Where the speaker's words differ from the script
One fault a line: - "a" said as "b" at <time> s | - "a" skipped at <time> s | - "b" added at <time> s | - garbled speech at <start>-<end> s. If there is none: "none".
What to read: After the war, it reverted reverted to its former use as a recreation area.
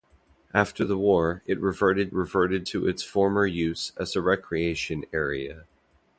none